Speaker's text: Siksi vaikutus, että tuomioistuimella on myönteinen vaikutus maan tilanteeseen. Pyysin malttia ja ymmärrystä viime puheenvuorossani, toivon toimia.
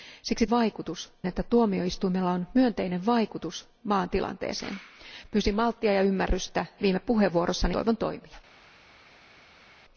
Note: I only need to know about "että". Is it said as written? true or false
true